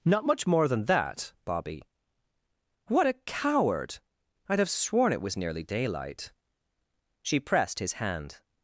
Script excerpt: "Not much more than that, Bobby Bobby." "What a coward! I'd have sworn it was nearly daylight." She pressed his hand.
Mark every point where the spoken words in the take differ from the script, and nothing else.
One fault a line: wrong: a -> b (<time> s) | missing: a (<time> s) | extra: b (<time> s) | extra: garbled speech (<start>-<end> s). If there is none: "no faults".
missing: Bobby (1.8 s)